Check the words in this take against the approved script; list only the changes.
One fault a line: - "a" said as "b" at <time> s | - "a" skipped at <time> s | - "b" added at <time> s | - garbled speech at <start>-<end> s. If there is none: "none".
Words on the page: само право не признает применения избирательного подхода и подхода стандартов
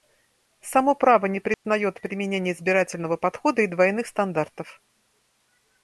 - "подхода" said as "двойных" at 3.7 s